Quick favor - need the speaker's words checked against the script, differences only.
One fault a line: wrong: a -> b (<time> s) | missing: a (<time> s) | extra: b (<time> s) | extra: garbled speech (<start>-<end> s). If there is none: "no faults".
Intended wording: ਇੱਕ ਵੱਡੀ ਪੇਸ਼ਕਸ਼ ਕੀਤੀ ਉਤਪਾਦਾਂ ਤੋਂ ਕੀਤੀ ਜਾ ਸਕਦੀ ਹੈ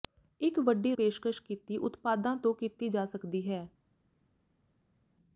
no faults